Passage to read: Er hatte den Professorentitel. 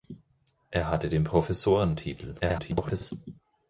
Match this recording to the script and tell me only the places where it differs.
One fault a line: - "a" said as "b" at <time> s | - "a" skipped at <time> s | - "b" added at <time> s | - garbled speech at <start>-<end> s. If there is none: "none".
- garbled speech at 2.4-3.1 s